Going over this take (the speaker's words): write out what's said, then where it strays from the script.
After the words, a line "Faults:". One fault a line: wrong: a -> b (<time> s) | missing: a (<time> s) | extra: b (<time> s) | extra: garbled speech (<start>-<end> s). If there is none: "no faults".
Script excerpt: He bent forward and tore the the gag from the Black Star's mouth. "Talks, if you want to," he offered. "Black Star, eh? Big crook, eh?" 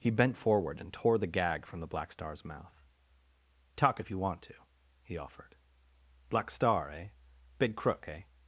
He bent forward and tore the gag from the Black Star's mouth. "Talk, if you want to," he offered. "Black Star, eh? Big crook, eh?"
Faults:
missing: the (1.3 s)
wrong: Talks -> Talk (3.7 s)